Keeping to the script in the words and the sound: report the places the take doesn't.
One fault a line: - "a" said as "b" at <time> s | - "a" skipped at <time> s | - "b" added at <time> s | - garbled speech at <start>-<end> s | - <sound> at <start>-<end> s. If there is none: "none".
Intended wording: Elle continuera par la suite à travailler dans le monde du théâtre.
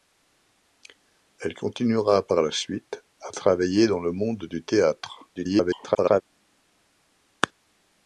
- garbled speech at 5.3-6.2 s